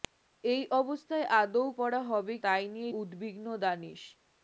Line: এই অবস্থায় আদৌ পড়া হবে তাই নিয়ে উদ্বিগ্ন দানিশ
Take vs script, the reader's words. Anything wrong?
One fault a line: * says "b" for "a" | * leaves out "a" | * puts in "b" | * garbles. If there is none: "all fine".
all fine